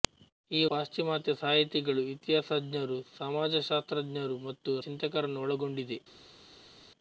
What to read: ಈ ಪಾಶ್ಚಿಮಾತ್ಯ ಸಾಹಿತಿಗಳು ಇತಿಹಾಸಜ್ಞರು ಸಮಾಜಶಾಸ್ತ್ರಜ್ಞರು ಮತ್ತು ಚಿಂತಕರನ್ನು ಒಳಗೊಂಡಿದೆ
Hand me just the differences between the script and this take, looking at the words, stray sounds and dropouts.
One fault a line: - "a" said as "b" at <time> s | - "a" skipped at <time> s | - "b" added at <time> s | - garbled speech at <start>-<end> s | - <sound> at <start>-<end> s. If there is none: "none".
none